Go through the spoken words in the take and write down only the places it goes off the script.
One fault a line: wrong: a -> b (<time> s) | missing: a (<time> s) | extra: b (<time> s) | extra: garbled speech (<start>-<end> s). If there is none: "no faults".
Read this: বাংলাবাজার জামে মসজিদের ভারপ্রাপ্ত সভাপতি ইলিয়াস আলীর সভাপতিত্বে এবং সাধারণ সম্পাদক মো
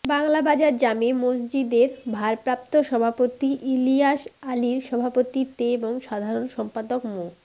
no faults